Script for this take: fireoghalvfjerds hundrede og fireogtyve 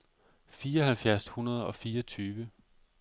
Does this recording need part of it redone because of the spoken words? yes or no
no